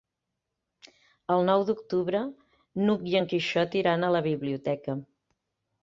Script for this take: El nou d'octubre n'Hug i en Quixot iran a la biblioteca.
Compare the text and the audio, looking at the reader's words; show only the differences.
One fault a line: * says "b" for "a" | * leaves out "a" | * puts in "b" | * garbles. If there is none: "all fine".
all fine